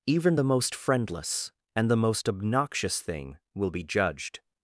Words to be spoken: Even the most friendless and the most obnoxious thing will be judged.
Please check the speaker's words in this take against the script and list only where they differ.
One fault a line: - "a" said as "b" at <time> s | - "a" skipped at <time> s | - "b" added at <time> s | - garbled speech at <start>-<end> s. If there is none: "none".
none